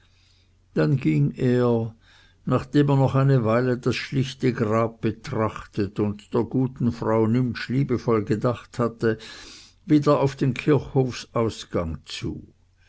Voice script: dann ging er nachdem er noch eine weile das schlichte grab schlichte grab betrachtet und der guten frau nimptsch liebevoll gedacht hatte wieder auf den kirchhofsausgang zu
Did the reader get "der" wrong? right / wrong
right